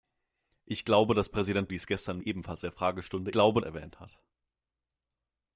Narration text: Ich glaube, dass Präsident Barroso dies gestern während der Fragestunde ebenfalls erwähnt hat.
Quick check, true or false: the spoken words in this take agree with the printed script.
false